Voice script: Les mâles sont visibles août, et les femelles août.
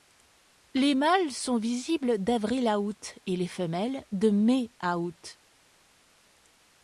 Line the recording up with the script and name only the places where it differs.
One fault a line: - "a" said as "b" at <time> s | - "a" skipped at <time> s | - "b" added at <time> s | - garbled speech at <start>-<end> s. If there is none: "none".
- "d'avril à" added at 2.2 s
- "de mai à" added at 4.1 s